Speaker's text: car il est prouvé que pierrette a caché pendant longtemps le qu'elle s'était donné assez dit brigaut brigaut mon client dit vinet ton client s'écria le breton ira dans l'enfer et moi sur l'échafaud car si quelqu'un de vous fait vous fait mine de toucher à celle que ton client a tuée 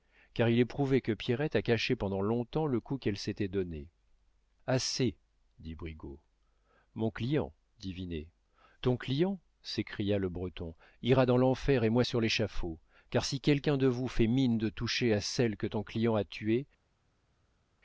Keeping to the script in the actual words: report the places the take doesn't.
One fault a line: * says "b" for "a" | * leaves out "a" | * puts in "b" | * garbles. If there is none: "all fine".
* puts in "coup"
* leaves out "brigaut"
* leaves out "vous fait"